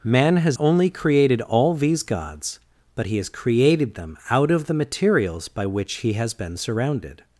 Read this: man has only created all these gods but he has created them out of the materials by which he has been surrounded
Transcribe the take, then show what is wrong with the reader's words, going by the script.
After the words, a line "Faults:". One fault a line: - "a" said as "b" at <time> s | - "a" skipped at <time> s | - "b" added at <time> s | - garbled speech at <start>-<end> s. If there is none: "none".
man has only created all these gods but he has created them out of the materials by which he has been surrounded
Faults:
none